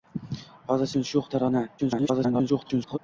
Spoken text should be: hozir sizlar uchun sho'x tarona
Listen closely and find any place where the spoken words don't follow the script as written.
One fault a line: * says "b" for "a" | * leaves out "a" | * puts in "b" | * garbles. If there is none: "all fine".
* leaves out "sizlar"
* garbles